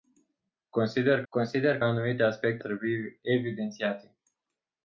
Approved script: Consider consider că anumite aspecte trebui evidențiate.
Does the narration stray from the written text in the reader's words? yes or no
no